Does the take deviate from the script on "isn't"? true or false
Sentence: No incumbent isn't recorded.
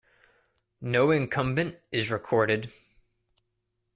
true